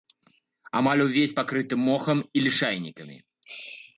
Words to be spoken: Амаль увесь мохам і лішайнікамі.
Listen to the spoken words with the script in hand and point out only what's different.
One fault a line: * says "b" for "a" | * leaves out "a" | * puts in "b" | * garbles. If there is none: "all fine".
* puts in "пакрыты"